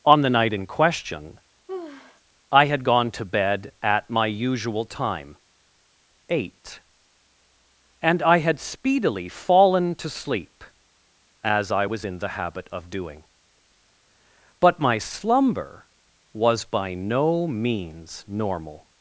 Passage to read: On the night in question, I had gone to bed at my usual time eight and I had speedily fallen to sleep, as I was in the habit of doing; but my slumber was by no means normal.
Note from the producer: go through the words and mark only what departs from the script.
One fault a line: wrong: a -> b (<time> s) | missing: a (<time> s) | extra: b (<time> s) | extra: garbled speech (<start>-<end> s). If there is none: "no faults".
no faults